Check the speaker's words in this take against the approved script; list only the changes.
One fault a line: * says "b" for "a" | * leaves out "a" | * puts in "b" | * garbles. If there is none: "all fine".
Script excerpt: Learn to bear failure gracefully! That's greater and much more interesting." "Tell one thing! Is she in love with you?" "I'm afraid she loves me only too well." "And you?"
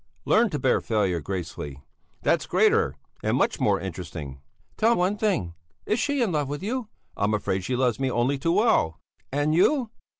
all fine